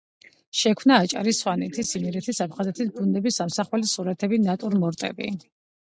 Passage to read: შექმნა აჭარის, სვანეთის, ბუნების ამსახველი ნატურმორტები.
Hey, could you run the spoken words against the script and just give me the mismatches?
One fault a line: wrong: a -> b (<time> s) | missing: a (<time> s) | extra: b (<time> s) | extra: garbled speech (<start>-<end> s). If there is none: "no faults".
extra: იმერეთის აფხაზეთის (2.0 s)
extra: სურათები (4.0 s)